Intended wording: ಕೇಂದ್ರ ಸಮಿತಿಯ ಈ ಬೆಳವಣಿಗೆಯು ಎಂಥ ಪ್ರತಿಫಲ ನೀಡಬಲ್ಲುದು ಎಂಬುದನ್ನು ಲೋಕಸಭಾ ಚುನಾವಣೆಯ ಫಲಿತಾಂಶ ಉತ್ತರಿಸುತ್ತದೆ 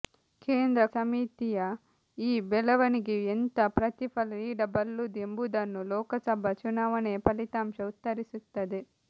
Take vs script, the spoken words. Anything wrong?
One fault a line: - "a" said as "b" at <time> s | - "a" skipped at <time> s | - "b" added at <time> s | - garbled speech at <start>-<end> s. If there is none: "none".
none